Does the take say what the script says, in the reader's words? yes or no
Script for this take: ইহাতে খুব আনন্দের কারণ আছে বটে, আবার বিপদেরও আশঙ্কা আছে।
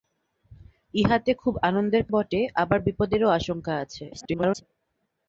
no